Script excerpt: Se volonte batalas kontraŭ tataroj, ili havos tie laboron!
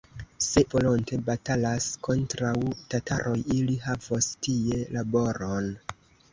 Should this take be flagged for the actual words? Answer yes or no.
no